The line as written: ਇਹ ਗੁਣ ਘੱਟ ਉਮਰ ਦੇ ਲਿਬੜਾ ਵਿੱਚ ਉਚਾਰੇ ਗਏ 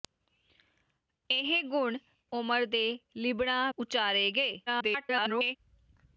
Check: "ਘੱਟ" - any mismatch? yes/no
yes